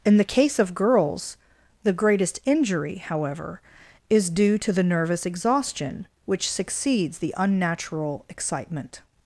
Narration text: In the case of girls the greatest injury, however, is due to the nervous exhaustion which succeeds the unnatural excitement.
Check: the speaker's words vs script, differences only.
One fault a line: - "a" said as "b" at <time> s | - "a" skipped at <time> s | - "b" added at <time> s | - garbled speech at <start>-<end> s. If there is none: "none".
none